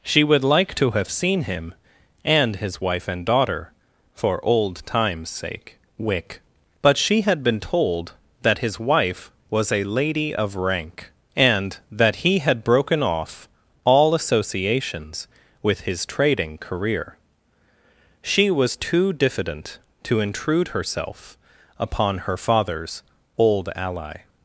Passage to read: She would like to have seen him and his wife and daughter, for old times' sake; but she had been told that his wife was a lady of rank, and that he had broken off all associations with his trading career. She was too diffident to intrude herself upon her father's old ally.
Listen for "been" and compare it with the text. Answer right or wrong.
right